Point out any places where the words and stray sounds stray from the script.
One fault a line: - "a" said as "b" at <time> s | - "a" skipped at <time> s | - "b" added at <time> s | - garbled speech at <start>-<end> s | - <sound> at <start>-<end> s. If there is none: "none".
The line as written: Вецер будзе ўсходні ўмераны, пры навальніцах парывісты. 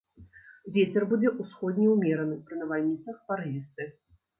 none